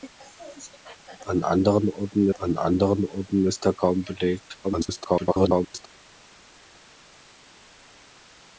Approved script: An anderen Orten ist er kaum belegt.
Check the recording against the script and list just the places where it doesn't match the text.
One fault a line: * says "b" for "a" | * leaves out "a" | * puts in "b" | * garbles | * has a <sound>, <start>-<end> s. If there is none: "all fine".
* puts in "an anderen Orten"
* garbles